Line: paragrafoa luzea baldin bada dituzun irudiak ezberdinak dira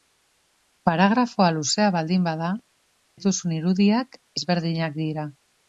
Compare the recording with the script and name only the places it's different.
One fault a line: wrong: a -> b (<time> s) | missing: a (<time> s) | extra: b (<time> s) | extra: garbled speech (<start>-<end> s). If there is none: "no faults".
no faults